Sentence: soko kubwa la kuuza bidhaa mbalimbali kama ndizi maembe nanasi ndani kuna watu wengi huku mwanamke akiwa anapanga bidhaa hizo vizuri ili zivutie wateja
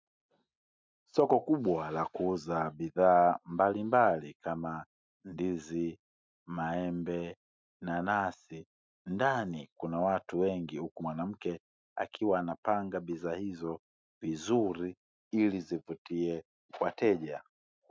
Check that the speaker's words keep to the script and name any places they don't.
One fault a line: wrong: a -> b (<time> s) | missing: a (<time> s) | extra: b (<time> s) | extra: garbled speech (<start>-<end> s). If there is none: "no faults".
no faults